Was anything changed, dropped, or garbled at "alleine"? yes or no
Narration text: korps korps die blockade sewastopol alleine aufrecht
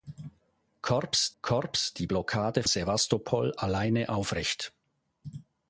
no